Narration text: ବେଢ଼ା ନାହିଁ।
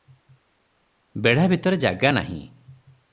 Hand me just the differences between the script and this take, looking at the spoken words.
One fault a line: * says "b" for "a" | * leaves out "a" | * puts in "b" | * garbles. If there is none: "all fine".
* puts in "ଭିତରେ ଜାଗା"